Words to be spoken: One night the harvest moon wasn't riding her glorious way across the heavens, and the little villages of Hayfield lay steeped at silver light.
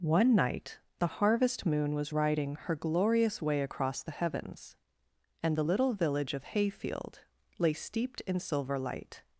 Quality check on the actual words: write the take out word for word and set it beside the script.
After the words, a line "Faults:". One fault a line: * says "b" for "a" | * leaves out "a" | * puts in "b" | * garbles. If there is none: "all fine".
One night the harvest moon was riding her glorious way across the heavens, and the little village of Hayfield lay steeped in silver light.
Faults:
* says "was" for "wasn't"
* says "village" for "villages"
* says "in" for "at"